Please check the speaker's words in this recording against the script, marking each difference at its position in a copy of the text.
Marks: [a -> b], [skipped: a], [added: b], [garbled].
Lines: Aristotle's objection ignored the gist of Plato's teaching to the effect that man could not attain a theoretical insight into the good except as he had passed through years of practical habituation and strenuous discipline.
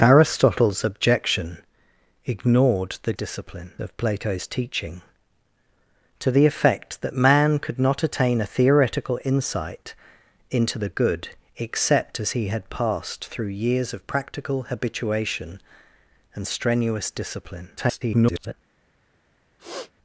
Aristotle's objection ignored the [gist -> discipline] of Plato's teaching to the effect that man could not attain a theoretical insight into the good except as he had passed through years of practical habituation and strenuous discipline. [garbled]